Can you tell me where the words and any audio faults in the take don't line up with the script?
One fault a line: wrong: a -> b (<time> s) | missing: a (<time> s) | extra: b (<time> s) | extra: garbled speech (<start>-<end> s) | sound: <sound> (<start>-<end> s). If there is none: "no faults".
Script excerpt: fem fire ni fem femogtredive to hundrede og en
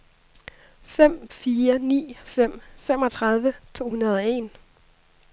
no faults